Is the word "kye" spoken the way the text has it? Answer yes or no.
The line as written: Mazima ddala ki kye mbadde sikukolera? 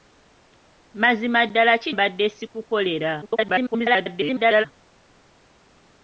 no